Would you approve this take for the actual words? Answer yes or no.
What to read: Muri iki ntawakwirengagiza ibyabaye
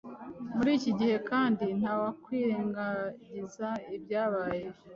no